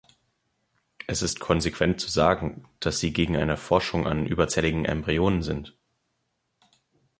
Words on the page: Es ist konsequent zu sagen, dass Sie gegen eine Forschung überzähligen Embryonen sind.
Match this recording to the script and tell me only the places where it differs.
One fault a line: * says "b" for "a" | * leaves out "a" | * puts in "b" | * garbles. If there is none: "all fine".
* puts in "an"